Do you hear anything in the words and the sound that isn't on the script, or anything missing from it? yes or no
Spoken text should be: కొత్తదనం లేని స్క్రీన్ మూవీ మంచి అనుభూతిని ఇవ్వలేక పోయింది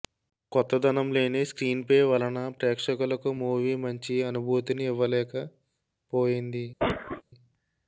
yes